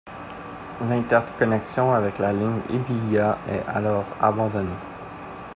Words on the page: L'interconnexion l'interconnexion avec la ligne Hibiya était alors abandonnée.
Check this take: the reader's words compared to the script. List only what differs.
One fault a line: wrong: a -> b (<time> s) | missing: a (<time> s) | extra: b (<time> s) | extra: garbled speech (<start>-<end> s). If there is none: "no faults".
missing: l'interconnexion (1.9 s)
wrong: était -> est (3.5 s)